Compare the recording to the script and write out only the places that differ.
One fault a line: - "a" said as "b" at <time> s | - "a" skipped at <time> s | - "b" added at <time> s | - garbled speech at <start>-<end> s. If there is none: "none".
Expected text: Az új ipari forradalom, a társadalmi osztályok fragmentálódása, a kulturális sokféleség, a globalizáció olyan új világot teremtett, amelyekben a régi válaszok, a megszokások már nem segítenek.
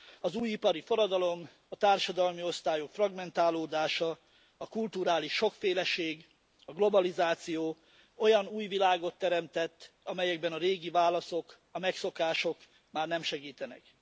none